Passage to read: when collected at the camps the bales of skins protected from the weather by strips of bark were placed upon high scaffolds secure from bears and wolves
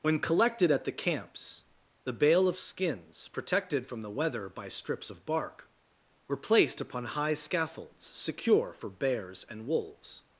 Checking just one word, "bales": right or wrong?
wrong